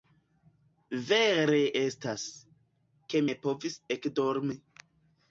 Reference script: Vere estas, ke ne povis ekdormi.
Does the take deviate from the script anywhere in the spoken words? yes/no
no